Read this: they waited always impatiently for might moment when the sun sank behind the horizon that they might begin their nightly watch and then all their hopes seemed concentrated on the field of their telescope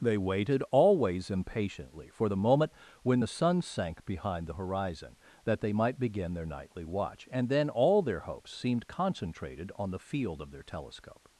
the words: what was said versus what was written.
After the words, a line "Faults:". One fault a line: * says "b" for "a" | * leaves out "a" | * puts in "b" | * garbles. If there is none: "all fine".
they waited always impatiently for the moment when the sun sank behind the horizon that they might begin their nightly watch and then all their hopes seemed concentrated on the field of their telescope
Faults:
* says "the" for "might"